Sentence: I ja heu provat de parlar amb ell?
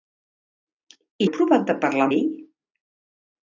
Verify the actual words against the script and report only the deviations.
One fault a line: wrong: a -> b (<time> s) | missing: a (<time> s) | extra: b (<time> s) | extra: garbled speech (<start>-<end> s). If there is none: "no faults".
missing: ja (1.3 s)
missing: amb (2.1 s)